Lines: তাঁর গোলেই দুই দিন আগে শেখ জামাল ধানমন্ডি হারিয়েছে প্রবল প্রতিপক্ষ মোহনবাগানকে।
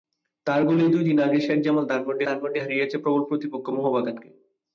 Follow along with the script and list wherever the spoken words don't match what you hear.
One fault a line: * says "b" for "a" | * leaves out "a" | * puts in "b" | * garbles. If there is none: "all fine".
* puts in "ধানমন্ডি"